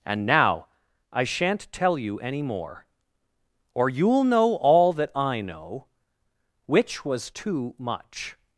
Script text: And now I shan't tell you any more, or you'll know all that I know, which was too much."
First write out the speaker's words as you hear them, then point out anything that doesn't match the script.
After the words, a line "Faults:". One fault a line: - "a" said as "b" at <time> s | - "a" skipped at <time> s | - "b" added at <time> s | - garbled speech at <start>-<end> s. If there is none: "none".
And now I shan't tell you any more, or you'll know all that I know, which was too much."
Faults:
none